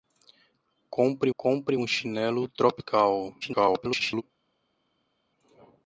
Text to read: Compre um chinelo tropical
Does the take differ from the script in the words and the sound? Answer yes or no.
yes